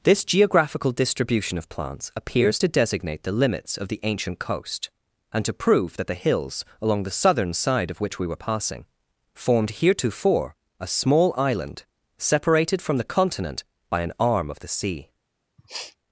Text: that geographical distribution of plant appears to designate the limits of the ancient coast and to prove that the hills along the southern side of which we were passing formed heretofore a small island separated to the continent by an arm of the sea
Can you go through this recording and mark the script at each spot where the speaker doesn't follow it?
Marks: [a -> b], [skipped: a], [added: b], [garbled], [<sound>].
[that -> this] geographical distribution of [plant -> plants] appears to designate the limits of the ancient coast and to prove that the hills along the southern side of which we were passing formed heretofore a small island separated [to -> from] the continent by an arm of the sea [sniff]